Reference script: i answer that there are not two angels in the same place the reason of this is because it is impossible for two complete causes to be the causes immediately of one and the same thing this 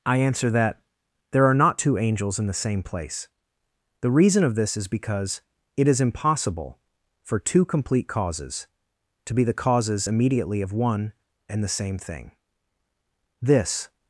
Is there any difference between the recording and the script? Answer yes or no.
no